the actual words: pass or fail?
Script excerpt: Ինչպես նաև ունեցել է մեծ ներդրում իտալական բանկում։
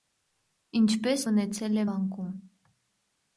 fail